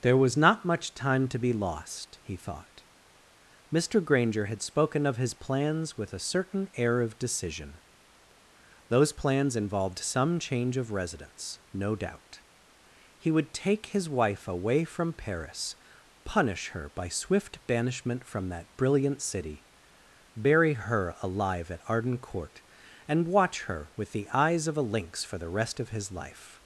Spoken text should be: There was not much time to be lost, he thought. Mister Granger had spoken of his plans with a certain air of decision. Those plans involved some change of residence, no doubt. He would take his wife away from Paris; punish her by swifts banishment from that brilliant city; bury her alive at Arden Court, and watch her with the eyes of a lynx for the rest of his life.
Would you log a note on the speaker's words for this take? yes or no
yes